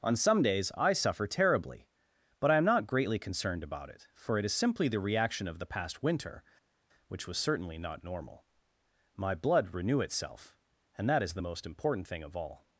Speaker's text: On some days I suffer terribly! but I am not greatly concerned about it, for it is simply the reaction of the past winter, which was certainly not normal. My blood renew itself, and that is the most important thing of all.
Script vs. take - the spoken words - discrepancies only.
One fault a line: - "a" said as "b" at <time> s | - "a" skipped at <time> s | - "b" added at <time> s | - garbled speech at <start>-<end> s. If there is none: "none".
none